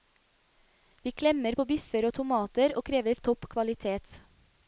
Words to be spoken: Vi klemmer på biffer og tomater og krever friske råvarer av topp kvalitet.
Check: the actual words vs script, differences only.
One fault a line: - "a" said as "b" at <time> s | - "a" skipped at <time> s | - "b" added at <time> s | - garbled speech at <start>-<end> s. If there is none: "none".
- "friske råvarer" skipped at 3.2 s